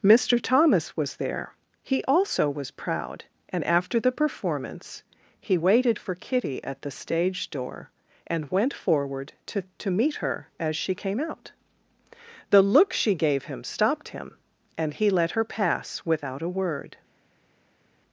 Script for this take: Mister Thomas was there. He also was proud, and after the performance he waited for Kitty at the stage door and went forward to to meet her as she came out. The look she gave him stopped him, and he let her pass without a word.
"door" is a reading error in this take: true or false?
false